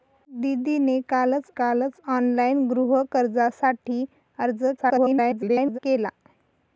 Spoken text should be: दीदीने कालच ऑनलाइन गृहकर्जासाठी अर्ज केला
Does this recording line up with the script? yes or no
no